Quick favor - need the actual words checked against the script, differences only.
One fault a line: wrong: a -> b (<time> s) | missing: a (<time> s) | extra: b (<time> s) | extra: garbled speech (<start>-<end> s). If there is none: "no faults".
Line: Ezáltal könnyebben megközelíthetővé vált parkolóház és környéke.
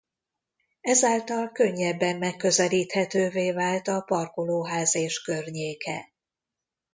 extra: a (3.9 s)